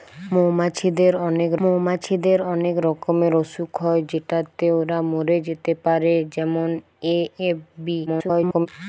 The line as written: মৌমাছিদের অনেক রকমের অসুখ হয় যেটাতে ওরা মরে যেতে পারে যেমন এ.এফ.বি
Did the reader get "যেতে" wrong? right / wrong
right